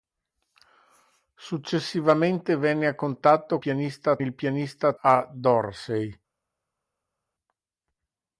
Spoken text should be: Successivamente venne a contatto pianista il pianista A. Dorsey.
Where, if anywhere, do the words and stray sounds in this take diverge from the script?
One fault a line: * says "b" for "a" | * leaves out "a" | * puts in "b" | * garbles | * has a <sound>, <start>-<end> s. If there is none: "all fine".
all fine